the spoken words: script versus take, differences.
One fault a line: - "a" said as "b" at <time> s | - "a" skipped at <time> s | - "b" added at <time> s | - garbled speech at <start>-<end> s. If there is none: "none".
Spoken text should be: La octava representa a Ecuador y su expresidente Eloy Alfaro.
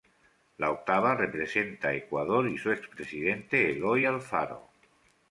none